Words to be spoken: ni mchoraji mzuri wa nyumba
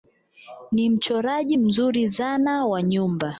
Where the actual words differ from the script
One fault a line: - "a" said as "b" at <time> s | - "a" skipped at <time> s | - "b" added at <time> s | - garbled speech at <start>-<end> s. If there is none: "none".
- "zana" added at 2.1 s